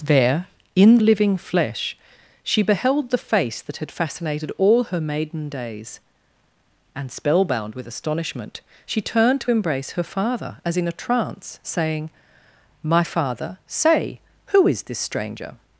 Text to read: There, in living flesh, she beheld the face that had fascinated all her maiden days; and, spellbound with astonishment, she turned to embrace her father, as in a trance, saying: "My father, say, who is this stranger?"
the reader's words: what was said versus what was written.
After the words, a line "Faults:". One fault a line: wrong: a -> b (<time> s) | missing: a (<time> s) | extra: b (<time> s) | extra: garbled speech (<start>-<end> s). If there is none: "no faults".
There, in living flesh, she beheld the face that had fascinated all her maiden days; and, spellbound with astonishment, she turned to embrace her father, as in a trance, saying: "My father, say, who is this stranger?"
Faults:
no faults